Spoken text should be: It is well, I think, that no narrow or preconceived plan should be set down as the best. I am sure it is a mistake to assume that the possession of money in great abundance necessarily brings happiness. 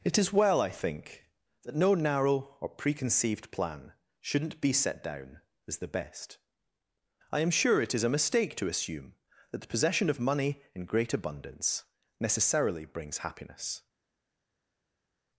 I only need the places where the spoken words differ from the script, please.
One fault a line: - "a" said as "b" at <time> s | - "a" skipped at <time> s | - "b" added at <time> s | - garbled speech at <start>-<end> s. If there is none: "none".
- "should" said as "shouldn't" at 4.2 s